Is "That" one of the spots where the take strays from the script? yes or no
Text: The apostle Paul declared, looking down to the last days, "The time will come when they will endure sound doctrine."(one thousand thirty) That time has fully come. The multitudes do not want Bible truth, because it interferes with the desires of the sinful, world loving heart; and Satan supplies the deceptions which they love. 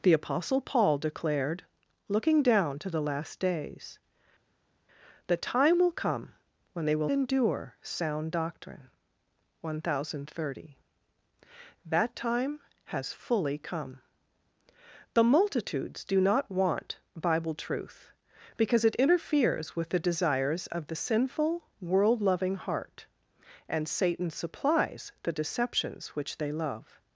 no